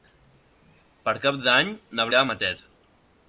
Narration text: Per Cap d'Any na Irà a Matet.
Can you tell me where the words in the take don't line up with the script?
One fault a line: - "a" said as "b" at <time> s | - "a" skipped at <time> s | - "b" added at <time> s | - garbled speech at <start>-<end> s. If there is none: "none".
none